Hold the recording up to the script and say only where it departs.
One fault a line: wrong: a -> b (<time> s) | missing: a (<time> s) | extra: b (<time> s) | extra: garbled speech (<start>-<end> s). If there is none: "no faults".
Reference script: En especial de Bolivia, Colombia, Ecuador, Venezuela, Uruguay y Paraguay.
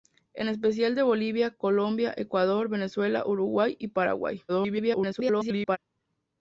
extra: garbled speech (4.5-5.8 s)